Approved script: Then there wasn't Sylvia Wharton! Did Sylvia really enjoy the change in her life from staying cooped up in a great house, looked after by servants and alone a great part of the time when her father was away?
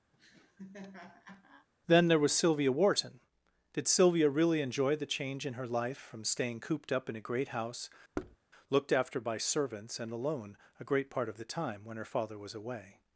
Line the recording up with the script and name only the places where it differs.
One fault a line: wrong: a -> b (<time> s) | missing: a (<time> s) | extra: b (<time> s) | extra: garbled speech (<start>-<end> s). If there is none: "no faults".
wrong: wasn't -> was (2.2 s)